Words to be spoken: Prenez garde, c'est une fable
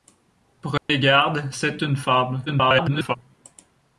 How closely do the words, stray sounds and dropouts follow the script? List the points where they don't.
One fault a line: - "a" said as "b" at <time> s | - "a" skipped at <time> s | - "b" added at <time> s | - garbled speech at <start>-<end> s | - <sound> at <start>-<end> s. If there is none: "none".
- dropout at 0.8-0.9 s
- garbled speech at 2.5-3.2 s